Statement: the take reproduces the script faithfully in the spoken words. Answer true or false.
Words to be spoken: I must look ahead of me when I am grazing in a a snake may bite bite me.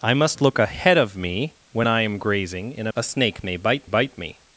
true